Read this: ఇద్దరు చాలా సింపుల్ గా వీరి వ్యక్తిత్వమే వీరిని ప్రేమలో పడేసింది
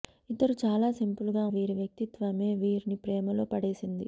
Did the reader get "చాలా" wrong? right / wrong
right